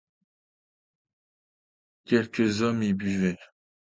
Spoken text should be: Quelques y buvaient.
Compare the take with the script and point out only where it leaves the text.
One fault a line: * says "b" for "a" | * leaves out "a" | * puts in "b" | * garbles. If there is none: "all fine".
* puts in "hommes"